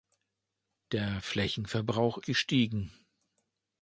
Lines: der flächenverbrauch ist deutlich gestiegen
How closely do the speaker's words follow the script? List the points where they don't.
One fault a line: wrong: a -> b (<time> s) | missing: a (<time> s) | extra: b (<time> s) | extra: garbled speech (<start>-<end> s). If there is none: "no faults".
missing: ist deutlich (2.2 s)